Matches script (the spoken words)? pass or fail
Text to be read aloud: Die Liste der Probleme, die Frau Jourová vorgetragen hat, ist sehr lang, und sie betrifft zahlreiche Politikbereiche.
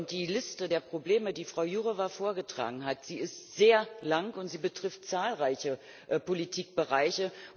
pass